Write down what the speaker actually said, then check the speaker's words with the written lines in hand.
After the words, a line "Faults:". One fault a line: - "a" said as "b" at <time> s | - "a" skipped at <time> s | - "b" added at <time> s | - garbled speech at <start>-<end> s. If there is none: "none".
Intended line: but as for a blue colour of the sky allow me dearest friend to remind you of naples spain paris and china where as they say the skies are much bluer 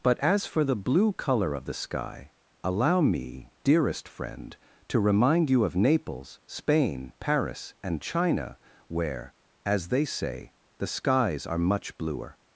but as for the blue colour of the sky allow me dearest friend to remind you of naples spain paris and china where as they say the skies are much bluer
Faults:
- "a" said as "the" at 0.6 s